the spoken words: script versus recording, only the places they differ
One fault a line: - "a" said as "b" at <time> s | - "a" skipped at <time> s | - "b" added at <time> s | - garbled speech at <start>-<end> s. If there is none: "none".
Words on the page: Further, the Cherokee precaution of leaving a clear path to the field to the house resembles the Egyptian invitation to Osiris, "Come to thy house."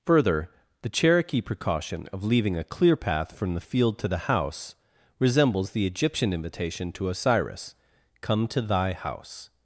- "to" said as "from" at 3.4 s